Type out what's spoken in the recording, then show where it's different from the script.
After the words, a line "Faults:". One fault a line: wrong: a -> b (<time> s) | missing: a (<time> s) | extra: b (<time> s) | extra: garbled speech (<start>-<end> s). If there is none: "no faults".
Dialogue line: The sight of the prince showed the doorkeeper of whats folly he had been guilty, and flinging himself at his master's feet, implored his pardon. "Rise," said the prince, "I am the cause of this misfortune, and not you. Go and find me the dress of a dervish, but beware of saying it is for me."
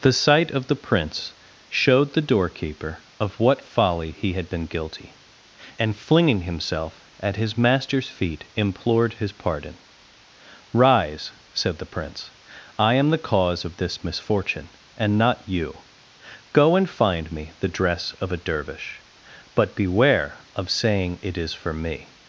The sight of the prince showed the doorkeeper of what folly he had been guilty, and flinging himself at his master's feet, implored his pardon. "Rise," said the prince, "I am the cause of this misfortune, and not you. Go and find me the dress of a dervish, but beware of saying it is for me."
Faults:
wrong: whats -> what (3.4 s)